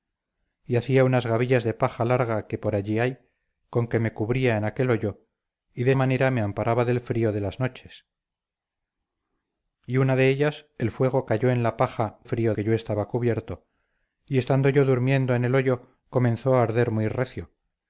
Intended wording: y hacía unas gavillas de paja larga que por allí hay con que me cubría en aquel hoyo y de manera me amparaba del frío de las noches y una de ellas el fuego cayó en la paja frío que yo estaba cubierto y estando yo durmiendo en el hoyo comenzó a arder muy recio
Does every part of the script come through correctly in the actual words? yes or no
yes